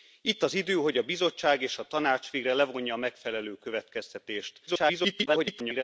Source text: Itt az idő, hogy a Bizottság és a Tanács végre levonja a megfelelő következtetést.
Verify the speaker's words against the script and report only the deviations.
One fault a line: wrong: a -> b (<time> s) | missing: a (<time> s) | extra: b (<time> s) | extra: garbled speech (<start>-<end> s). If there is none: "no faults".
extra: garbled speech (4.7-5.8 s)